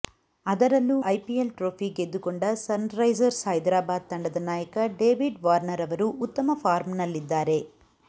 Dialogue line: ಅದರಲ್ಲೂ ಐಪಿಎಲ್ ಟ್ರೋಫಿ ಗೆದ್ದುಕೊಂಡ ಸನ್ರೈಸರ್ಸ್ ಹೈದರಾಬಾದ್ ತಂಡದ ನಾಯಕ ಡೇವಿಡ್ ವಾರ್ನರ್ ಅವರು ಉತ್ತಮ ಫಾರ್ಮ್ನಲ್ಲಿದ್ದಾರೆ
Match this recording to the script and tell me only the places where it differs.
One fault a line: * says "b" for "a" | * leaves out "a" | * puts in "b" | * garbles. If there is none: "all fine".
all fine